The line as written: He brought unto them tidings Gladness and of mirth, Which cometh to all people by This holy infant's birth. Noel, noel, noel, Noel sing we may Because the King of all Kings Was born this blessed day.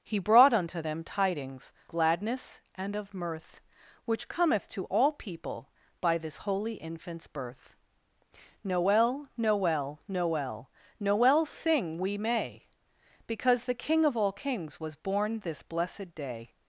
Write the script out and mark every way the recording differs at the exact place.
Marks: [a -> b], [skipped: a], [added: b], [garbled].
He brought unto them tidings Gladness and of mirth, Which cometh to all people by This holy infant's birth. Noel, noel, noel, Noel sing we may Because the King of all Kings Was born this blessed day.